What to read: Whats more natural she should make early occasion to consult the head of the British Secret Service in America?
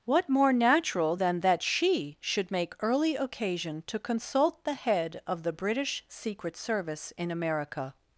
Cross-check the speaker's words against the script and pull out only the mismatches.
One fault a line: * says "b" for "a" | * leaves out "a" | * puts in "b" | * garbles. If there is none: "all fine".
* says "What" for "Whats"
* puts in "than that"